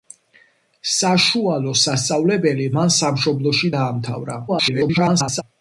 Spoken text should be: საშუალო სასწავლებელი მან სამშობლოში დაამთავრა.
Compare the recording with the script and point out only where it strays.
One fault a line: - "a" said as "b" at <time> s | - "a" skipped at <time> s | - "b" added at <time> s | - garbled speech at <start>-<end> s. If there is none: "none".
- garbled speech at 4.5-5.4 s